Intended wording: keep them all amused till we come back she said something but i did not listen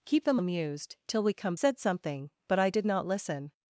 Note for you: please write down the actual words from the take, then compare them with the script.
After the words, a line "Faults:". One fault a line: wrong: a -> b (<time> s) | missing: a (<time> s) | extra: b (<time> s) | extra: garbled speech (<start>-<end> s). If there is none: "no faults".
keep them amused till we come said something but i did not listen
Faults:
missing: all (0.4 s)
missing: back she (1.5 s)